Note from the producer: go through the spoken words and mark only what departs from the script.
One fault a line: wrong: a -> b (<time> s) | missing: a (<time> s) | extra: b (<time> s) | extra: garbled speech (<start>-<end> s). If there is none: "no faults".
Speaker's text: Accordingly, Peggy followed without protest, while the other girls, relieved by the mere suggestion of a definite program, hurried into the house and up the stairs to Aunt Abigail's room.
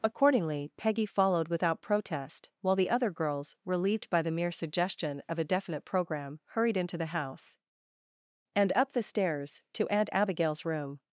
no faults